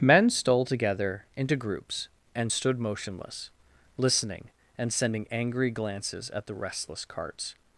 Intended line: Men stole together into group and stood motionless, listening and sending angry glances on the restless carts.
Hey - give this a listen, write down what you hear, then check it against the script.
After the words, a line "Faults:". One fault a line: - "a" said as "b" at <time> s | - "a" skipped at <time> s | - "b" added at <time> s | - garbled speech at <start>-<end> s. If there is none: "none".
Men stole together into groups and stood motionless, listening and sending angry glances at the restless carts.
Faults:
- "group" said as "groups" at 1.6 s
- "on" said as "at" at 6.3 s